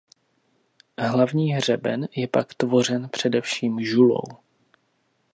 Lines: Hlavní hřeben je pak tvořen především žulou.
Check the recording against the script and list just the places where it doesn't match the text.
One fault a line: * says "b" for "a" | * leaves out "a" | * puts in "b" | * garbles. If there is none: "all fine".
all fine